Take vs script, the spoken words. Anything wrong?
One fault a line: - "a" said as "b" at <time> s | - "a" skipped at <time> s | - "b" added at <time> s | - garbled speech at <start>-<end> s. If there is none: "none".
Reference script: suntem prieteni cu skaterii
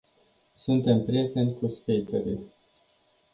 none